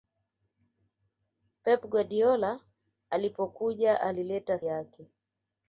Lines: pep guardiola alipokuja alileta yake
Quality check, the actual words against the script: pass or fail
pass